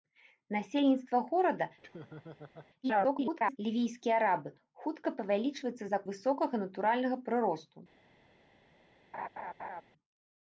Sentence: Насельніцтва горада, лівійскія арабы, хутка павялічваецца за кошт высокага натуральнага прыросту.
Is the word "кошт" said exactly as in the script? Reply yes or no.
no